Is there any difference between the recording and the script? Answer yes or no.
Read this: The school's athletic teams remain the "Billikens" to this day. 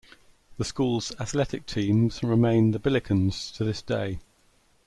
no